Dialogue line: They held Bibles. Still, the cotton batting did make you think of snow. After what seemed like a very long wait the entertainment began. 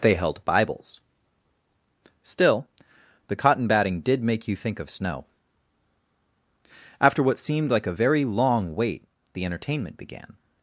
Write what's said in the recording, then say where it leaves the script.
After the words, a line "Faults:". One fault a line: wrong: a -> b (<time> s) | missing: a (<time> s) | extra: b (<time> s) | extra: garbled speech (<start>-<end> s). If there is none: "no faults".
They held Bibles. Still, the cotton batting did make you think of snow. After what seemed like a very long wait the entertainment began.
Faults:
no faults